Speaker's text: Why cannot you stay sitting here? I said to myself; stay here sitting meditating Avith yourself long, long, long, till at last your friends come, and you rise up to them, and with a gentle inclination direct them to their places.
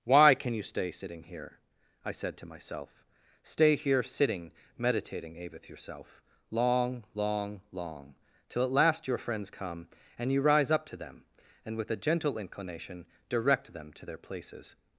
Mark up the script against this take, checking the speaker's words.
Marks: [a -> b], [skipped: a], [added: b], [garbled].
Why [cannot -> can] you stay sitting here? I said to myself; stay here sitting meditating Avith yourself long, long, long, till at last your friends come, and you rise up to them, and with a gentle inclination direct them to their places.